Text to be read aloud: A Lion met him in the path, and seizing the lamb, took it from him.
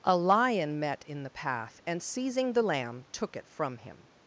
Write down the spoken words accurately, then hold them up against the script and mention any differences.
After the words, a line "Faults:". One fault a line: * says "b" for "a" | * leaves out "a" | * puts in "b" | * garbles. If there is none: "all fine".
A Lion met in the path, and seizing the lamb, took it from him.
Faults:
* leaves out "him"